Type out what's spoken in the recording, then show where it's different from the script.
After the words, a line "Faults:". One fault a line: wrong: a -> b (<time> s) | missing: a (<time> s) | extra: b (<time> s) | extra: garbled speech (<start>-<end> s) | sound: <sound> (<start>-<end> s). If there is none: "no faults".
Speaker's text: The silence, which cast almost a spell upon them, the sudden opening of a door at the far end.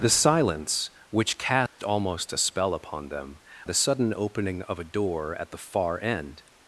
The silence, which cast almost a spell upon them, the sudden opening of a door at the far end.
Faults:
sound: dropout (1.7-1.8 s)